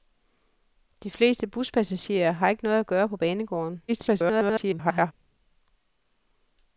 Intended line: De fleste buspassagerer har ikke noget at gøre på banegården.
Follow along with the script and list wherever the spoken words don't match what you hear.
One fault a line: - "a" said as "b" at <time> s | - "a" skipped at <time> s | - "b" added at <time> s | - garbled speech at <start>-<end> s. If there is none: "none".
- garbled speech at 3.9-5.1 s